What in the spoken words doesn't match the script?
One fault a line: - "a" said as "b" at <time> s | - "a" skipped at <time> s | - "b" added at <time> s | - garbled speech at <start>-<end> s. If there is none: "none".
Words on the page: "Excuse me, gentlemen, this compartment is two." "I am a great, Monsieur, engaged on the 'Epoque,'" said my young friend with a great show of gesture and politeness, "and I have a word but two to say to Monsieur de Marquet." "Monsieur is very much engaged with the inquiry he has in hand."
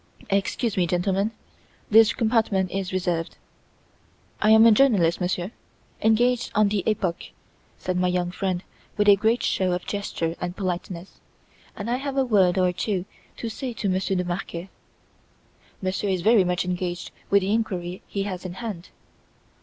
- "two" said as "reserved" at 2.9 s
- "great" said as "journalist" at 4.7 s
- "but" said as "or" at 12.6 s